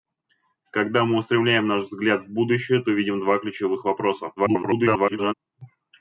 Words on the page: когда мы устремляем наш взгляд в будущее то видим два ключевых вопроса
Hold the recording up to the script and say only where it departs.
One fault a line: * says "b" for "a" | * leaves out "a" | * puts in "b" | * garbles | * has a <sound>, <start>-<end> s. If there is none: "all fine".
* garbles